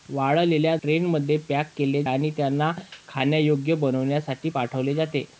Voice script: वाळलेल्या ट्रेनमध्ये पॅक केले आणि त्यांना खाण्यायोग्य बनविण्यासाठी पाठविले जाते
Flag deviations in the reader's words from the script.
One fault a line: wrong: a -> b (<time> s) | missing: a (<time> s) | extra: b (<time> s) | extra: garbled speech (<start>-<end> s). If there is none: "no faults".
no faults